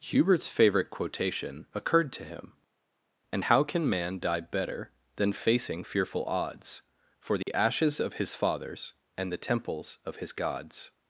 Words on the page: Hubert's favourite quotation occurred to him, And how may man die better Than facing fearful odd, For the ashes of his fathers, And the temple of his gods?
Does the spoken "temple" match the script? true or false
false